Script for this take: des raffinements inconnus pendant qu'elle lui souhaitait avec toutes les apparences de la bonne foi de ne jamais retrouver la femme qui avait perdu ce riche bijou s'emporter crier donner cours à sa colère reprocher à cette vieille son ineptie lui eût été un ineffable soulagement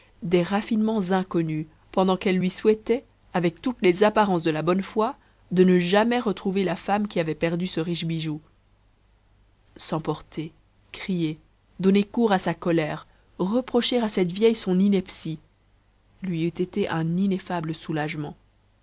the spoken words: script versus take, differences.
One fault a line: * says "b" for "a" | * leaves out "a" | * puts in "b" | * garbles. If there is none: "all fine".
all fine